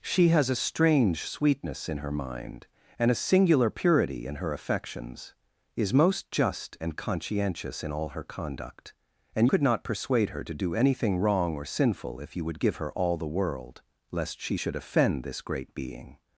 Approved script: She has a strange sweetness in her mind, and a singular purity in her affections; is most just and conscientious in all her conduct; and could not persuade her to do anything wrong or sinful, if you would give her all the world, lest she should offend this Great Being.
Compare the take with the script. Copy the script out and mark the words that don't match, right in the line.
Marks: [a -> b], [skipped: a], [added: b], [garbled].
She has a strange sweetness in her mind, and a singular purity in her affections; is most just and conscientious in all her conduct; and could not persuade her to do anything wrong or sinful, if you would give her all the world, lest she should offend this Great Being.